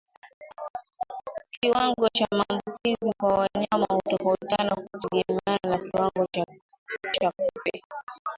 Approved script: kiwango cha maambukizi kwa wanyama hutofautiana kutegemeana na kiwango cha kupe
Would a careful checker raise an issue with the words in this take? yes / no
no